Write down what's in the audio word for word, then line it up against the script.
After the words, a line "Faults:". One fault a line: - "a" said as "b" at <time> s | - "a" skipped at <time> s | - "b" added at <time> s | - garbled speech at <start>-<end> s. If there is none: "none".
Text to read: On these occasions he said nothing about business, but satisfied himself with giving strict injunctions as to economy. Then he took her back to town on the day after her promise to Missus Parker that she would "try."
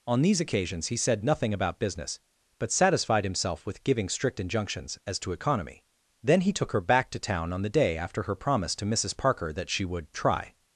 On these occasions he said nothing about business, but satisfied himself with giving strict injunctions as to economy. Then he took her back to town on the day after her promise to Missus Parker that she would "try."
Faults:
none